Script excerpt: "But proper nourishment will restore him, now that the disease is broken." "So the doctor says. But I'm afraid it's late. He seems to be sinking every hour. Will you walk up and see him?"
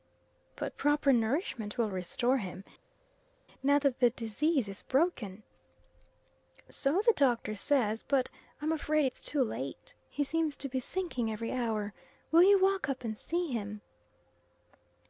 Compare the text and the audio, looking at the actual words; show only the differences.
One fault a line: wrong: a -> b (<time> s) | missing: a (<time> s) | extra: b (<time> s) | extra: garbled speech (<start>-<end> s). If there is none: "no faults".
extra: too (9.2 s)